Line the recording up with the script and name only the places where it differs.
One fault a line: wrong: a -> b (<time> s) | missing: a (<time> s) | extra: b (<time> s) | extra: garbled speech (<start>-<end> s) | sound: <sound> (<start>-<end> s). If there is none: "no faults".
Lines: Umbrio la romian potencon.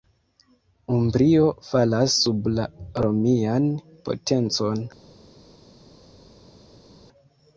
extra: falas sub (1.7 s)